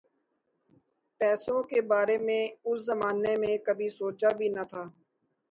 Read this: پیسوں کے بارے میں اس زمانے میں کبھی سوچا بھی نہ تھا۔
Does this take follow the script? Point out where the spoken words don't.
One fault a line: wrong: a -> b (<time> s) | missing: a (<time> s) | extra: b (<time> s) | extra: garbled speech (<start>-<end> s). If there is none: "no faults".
no faults